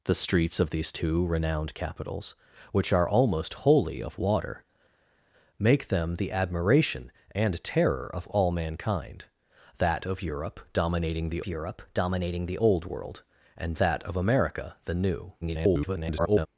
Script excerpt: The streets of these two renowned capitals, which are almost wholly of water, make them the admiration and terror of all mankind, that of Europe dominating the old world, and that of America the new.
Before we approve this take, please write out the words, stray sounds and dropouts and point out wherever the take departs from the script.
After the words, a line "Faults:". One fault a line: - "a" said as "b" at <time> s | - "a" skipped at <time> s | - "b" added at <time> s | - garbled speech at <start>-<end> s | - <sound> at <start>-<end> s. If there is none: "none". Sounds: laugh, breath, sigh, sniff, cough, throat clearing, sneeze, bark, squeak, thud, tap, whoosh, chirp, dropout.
The streets of these two renowned capitals, which are almost wholly of water, make them the admiration and terror of all mankind, that of Europe dominating the Europe dominating the old world, and that of America the new. [garbled]
Faults:
- "Europe dominating the" added at 11.5 s
- garbled speech at 15.4-16.5 s